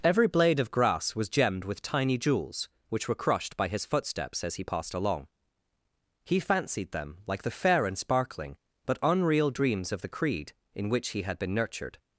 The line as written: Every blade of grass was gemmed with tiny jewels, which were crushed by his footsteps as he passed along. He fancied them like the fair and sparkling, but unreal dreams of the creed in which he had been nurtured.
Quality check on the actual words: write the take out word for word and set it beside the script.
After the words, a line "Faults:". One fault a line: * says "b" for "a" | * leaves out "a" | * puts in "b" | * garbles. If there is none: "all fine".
Every blade of grass was gemmed with tiny jewels, which were crushed by his footsteps as he passed along. He fancied them like the fair and sparkling, but unreal dreams of the creed in which he had been nurtured.
Faults:
all fine